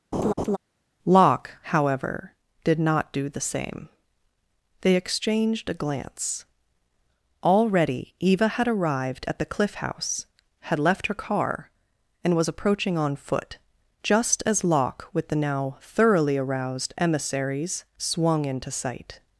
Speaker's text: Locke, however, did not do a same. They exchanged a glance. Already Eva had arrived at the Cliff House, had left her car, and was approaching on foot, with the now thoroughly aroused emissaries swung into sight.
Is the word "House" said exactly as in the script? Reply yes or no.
yes